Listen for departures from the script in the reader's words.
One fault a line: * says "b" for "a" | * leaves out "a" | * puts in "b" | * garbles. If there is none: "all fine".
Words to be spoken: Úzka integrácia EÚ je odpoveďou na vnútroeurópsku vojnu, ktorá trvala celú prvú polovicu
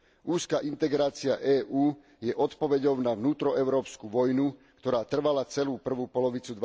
all fine